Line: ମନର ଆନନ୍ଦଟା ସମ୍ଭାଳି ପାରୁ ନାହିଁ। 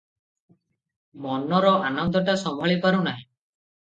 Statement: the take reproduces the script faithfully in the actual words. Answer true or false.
true